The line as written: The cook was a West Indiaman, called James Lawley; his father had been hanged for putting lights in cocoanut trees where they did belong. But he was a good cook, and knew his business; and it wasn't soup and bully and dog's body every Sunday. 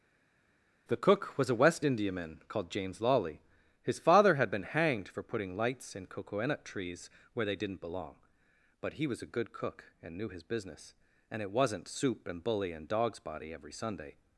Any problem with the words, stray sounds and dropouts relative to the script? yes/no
yes